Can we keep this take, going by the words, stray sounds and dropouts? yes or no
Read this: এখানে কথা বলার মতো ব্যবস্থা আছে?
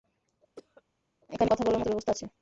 no